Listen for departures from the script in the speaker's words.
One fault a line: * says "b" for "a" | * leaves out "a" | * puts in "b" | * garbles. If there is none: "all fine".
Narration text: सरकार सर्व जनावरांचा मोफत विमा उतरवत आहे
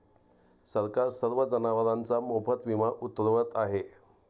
all fine